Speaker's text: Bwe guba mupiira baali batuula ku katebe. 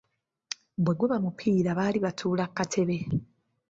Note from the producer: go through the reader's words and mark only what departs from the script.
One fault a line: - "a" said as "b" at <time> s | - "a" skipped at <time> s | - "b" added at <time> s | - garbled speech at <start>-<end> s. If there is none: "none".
none